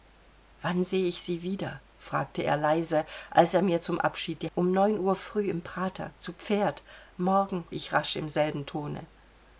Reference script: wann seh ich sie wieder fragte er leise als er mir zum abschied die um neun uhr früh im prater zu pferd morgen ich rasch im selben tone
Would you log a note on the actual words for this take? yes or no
no